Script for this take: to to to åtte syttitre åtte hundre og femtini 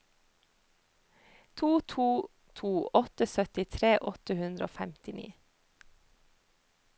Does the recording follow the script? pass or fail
pass